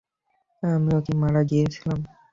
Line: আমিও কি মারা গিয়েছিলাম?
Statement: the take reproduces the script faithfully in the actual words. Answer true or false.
true